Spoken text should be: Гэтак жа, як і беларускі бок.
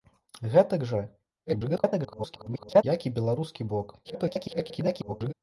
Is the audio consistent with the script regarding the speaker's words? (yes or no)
no